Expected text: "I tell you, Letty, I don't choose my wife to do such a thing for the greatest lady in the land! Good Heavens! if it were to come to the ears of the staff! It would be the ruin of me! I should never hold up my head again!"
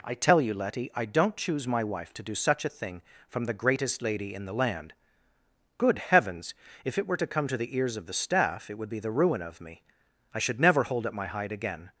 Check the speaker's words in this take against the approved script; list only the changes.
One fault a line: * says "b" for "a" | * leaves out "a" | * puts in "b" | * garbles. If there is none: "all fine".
* says "from" for "for"
* says "hide" for "head"